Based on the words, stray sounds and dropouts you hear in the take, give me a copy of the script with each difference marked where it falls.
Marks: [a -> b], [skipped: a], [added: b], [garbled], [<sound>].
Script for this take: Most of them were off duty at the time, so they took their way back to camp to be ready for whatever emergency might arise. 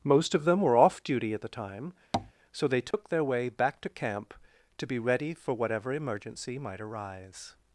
Most of them were off duty at the time, [tap] so they took [dropout] their way back to camp to be ready for whatever emergency might arise.